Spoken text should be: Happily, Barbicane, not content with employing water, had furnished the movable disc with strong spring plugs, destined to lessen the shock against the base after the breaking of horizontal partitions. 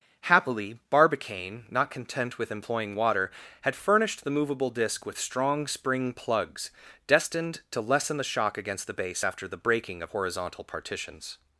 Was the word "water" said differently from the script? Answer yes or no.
no